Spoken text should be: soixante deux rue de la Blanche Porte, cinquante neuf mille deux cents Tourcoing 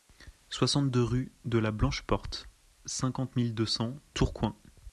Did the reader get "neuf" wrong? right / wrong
wrong